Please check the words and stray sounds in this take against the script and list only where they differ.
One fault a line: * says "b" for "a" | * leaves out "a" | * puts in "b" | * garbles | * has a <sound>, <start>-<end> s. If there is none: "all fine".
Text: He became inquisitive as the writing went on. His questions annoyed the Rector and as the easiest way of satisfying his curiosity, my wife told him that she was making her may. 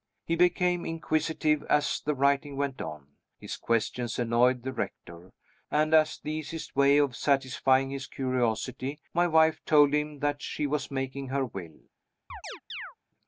* says "will" for "may"
* has a chirp, 12.3-13.0 s